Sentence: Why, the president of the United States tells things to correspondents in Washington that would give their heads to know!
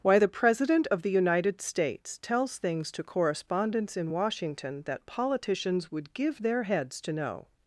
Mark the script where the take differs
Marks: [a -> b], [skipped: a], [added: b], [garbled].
Why, the president of the United States tells things to correspondents in Washington that [added: politicians] would give their heads to know!